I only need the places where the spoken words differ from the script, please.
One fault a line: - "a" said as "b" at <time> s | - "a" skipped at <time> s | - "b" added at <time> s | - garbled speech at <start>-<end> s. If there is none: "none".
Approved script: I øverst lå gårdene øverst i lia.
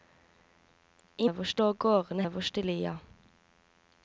none